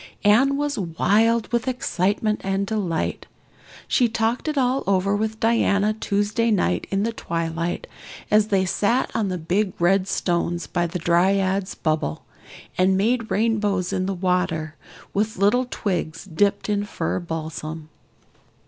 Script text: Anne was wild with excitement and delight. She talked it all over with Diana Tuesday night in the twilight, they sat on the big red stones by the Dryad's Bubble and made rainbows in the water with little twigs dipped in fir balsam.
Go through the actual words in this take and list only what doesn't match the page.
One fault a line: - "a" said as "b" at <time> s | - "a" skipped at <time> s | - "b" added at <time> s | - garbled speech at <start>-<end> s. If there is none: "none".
- "as" added at 8.3 s